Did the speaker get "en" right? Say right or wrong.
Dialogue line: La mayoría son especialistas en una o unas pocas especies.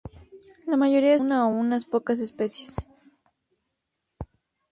wrong